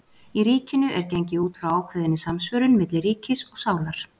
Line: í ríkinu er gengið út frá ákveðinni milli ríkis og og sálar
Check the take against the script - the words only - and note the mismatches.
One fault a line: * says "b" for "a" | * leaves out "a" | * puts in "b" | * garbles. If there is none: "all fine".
* puts in "samsvörun"
* leaves out "og"